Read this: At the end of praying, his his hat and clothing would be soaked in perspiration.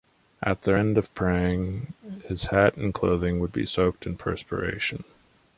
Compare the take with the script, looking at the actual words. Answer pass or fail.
fail